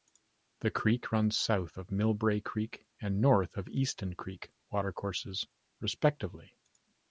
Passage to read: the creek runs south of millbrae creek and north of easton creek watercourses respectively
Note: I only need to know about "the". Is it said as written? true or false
true